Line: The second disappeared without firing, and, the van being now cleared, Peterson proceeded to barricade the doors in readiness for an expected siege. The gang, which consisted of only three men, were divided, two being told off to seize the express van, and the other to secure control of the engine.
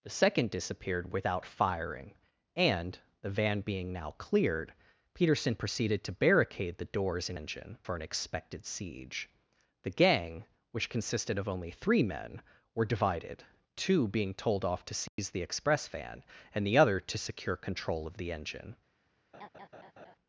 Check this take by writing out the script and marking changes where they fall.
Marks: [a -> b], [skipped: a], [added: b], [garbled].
The second disappeared without firing, and, the van being now cleared, Peterson proceeded to barricade the doors in [readiness -> engine] for an expected siege. The gang, which consisted of only three men, were divided, two being told off to seize the express van, and the other to secure control of the engine.